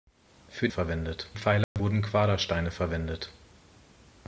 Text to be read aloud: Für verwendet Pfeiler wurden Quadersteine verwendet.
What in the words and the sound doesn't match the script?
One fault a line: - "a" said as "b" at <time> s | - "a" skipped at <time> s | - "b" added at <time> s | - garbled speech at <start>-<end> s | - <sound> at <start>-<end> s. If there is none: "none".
- dropout at 1.6-1.8 s